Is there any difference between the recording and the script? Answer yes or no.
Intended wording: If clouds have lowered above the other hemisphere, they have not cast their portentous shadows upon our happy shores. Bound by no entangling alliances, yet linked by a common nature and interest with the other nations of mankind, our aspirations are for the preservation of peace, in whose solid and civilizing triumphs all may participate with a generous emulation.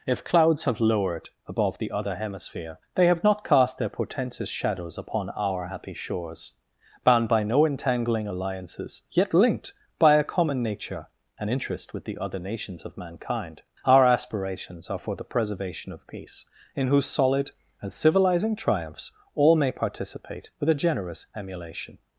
no